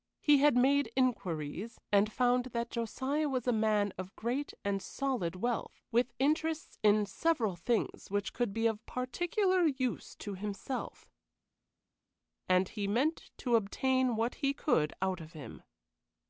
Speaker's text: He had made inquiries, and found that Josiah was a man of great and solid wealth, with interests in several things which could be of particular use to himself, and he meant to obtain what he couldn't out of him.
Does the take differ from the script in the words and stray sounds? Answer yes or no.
yes